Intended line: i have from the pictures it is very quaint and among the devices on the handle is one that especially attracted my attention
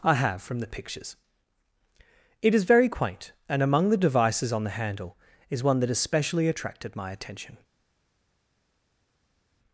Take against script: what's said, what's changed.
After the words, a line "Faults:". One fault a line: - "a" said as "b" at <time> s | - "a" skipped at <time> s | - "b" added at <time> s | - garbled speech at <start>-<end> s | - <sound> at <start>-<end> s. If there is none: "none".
i have from the pictures it is very quaint and among the devices on the handle is one that especially attracted my attention
Faults:
none